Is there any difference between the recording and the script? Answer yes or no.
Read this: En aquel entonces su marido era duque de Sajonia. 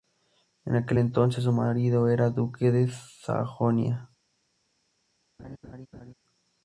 no